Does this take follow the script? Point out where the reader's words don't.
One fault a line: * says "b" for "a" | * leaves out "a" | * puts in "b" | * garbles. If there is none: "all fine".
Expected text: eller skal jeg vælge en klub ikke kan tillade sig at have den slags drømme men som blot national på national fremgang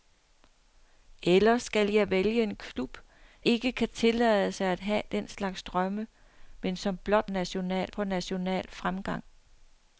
all fine